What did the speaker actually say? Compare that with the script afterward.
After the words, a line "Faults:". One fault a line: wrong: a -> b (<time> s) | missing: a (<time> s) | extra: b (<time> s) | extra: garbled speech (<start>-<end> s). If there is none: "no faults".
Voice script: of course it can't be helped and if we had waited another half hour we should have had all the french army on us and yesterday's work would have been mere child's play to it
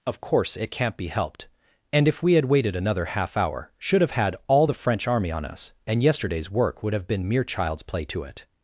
of course it can't be helped and if we had waited another half hour should have had all the french army on us and yesterday's work would have been mere child's play to it
Faults:
missing: we (3.7 s)